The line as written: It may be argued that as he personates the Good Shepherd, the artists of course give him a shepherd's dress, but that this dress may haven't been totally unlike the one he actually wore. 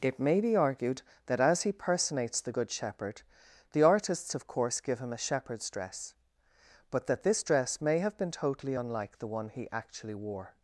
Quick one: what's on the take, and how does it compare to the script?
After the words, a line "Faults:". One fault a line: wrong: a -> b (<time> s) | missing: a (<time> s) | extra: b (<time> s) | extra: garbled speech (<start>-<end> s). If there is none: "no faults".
It may be argued that as he personates the Good Shepherd, the artists of course give him a shepherd's dress, but that this dress may have been totally unlike the one he actually wore.
Faults:
wrong: haven't -> have (8.0 s)